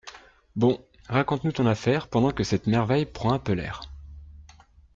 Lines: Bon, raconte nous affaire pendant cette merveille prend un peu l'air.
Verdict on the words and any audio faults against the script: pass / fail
fail